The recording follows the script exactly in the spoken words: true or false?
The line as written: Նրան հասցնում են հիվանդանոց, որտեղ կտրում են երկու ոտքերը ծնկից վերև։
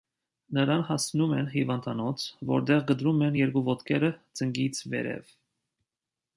true